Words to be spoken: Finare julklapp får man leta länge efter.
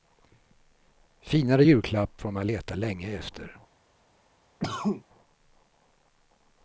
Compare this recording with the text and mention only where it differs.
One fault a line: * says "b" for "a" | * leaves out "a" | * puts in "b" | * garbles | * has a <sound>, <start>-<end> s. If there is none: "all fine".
* has a cough, 4.6-5.0 s